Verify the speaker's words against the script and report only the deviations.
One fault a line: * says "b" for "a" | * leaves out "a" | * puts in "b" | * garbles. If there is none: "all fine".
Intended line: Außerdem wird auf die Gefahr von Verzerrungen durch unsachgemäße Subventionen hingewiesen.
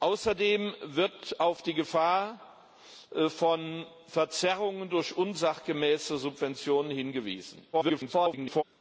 * garbles